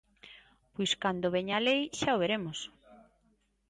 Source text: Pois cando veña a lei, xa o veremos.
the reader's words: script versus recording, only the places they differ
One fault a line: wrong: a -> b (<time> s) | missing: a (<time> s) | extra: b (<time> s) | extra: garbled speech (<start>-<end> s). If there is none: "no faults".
no faults